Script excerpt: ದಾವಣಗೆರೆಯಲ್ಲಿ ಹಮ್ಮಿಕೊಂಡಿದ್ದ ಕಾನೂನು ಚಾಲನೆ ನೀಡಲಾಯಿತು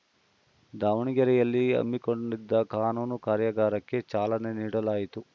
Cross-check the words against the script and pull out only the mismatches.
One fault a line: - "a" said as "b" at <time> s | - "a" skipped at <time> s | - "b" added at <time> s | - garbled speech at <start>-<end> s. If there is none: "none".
- "ಕಾರ್ಯಾಗಾರಕ್ಕೆ" added at 3.2 s